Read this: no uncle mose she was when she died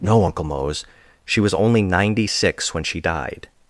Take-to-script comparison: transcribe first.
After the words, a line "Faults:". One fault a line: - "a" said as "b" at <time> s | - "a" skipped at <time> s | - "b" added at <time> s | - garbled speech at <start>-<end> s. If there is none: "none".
no uncle mose she was only ninety six when she died
Faults:
- "only ninety six" added at 1.5 s